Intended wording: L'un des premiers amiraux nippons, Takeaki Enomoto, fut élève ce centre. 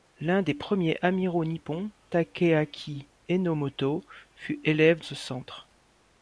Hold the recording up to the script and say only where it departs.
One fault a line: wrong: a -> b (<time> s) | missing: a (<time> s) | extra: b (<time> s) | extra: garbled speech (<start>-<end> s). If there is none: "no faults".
no faults